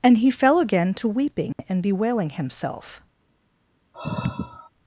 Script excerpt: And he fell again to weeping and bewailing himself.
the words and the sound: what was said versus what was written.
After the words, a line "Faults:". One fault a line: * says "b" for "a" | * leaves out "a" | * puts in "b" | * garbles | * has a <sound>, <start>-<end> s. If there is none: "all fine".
And he fell again to weeping and bewailing himself.
Faults:
* has a dropout, 1.5-1.6 s
* has a sigh, 3.9-4.7 s